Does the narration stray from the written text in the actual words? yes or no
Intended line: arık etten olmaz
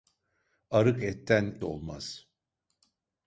no